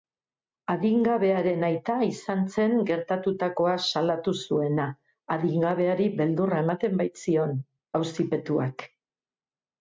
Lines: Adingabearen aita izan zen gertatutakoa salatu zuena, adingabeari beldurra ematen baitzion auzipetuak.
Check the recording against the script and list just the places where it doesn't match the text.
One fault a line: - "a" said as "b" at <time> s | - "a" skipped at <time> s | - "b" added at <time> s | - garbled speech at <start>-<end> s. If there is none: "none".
none